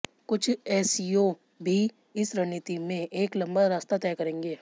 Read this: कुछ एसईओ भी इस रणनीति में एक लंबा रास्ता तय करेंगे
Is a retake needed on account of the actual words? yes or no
no